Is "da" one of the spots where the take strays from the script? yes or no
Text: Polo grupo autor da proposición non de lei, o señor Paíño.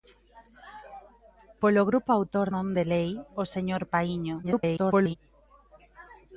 yes